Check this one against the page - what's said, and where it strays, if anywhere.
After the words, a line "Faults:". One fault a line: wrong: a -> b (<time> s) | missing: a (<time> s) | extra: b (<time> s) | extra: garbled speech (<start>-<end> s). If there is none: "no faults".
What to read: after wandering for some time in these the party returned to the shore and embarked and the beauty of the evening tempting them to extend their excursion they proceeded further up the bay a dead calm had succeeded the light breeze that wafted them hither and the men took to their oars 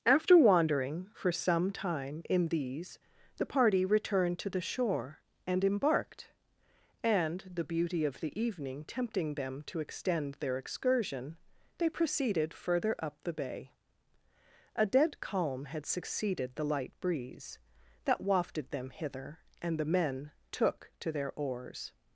after wandering for some time in these the party returned to the shore and embarked and the beauty of the evening tempting them to extend their excursion they proceeded further up the bay a dead calm had succeeded the light breeze that wafted them hither and the men took to their oars
Faults:
no faults